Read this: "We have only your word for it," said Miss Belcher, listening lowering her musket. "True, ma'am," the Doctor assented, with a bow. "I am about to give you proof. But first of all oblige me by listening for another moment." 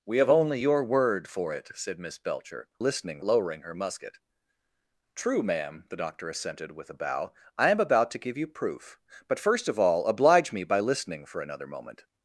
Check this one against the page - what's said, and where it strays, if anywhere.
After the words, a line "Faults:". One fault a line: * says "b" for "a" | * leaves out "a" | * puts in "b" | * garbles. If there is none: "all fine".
"We have only your word for it," said Miss Belcher, listening lowering her musket. "True, ma'am," the Doctor assented, with a bow. "I am about to give you proof. But first of all oblige me by listening for another moment."
Faults:
all fine